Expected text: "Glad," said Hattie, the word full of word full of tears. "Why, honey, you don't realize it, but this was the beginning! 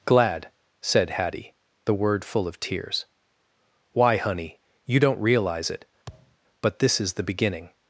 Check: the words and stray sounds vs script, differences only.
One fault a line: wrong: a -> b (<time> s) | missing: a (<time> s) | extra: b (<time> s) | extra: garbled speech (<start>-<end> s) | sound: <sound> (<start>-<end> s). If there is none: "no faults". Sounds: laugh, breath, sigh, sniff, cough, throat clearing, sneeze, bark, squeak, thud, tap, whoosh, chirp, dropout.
missing: word full of (2.6 s)
sound: thud (6.1-6.4 s)
wrong: was -> is (7.0 s)